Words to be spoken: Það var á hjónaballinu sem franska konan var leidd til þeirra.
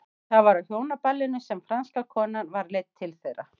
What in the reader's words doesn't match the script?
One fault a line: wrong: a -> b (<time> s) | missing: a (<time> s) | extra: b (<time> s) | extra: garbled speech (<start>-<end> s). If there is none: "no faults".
no faults